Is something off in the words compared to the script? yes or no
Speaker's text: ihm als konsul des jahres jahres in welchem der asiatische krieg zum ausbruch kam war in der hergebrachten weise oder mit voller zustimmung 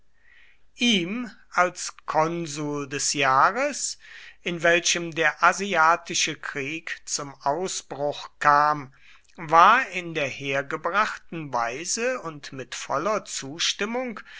yes